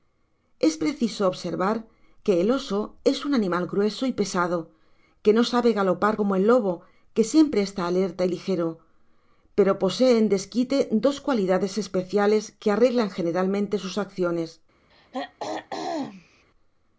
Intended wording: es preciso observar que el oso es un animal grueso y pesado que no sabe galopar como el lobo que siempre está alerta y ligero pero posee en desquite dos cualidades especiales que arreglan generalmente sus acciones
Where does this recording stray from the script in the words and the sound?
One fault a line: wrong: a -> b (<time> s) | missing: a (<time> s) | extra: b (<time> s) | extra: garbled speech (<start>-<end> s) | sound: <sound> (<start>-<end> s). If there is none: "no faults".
sound: throat clearing (14.9-16.4 s)